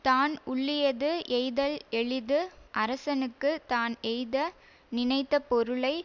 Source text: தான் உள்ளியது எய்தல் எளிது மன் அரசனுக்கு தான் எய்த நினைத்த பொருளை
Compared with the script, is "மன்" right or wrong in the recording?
wrong